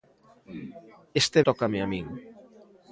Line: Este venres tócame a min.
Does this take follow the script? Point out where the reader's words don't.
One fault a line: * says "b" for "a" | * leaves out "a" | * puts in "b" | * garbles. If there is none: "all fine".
* leaves out "venres"